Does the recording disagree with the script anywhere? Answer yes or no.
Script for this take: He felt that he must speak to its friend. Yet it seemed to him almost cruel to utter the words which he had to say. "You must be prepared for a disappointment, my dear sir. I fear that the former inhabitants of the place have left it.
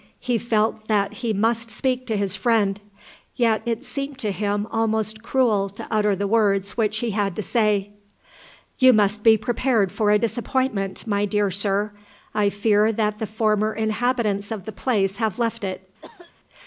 yes